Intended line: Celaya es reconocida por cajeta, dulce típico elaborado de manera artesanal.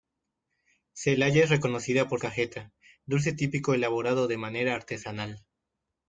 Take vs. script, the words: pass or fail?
pass